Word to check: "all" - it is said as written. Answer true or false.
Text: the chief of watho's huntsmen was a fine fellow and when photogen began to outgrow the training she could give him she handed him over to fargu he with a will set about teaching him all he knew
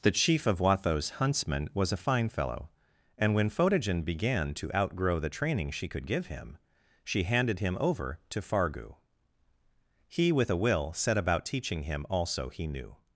false